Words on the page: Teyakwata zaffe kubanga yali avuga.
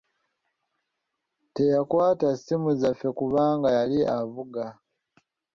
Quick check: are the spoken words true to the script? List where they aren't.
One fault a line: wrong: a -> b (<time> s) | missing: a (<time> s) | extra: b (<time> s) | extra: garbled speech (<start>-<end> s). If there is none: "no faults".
extra: ssimu (2.4 s)